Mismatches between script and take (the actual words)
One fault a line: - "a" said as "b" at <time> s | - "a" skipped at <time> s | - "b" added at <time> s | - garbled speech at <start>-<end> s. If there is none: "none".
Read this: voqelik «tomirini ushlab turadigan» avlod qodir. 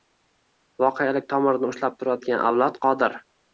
none